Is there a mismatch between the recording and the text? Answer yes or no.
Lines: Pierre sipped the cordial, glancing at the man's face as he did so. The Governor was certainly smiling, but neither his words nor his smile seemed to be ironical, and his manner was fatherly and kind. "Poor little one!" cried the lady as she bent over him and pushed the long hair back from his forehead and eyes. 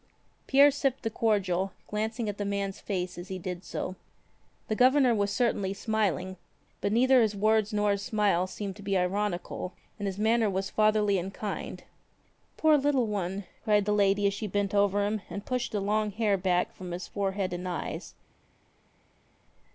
no